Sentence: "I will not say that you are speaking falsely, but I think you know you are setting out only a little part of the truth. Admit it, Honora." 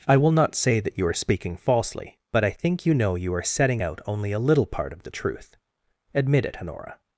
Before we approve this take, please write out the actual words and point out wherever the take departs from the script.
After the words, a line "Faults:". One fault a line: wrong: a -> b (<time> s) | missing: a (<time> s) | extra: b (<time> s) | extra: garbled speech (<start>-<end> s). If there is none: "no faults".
"I will not say that you are speaking falsely, but I think you know you are setting out only a little part of the truth. Admit it, Honora."
Faults:
no faults